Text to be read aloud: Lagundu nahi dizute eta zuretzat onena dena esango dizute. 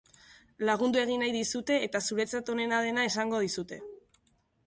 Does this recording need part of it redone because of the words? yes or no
yes